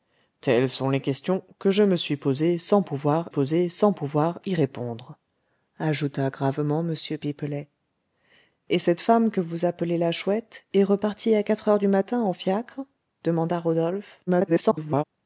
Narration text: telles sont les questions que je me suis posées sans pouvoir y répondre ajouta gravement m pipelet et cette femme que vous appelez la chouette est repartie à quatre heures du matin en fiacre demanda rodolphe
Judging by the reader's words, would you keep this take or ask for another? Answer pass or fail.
fail